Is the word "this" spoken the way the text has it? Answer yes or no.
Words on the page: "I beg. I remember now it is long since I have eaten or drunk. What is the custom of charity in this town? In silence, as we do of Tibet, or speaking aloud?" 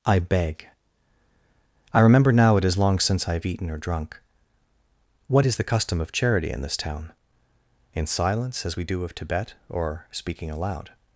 yes